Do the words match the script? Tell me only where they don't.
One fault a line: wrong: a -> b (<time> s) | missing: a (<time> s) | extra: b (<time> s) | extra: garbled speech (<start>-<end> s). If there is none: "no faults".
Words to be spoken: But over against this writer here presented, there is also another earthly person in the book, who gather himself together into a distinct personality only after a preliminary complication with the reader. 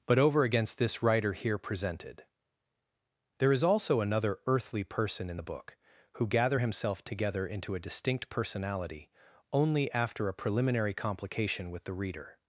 no faults